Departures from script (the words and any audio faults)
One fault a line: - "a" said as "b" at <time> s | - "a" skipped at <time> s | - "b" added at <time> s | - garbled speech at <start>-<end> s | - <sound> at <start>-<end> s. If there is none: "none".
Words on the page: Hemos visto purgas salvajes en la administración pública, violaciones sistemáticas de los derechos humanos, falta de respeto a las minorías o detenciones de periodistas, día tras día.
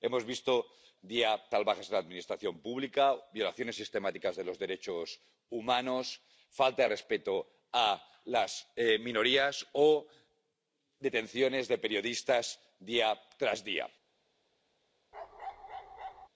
- "purgas" said as "día" at 1.0 s
- bark at 15.1-16.3 s